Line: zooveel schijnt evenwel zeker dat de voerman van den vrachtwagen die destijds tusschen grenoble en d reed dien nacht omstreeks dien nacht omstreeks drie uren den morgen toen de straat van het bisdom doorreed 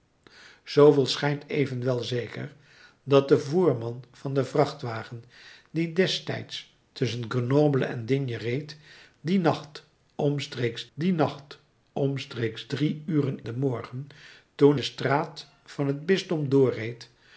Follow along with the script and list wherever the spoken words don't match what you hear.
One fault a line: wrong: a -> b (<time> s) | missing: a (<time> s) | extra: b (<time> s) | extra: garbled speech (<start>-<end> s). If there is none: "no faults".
no faults